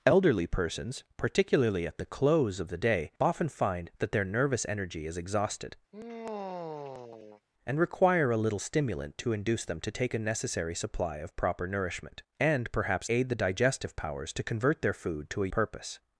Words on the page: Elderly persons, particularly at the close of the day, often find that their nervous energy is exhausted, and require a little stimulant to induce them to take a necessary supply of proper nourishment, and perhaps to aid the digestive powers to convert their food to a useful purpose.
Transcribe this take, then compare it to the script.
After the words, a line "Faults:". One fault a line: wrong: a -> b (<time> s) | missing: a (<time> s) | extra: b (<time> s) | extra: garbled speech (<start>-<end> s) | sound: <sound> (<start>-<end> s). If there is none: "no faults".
Elderly persons, particularly at the close of the day, often find that their nervous energy is exhausted, and require a little stimulant to induce them to take a necessary supply of proper nourishment, and perhaps aid the digestive powers to convert their food to a purpose.
Faults:
sound: sigh (5.9-7.4 s)
missing: to (13.1 s)
missing: useful (15.5 s)